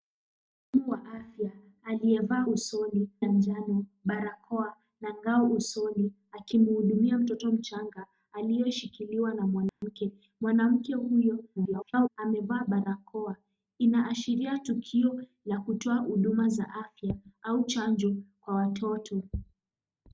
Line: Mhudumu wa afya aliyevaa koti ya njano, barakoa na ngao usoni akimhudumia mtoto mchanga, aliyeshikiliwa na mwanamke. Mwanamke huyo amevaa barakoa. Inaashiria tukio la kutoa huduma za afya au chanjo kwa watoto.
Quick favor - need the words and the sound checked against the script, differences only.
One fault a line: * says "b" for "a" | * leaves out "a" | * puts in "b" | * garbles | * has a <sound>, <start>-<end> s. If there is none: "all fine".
* says "usoni" for "koti"
* has a dropout, 9.7-9.8 s
* garbles